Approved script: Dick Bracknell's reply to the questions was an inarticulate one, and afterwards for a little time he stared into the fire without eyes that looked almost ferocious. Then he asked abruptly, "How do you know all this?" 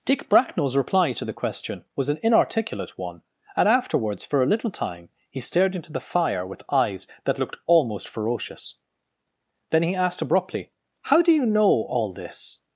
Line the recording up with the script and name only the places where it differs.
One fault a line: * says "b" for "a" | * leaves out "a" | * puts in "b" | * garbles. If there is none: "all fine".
* says "question" for "questions"
* says "with" for "without"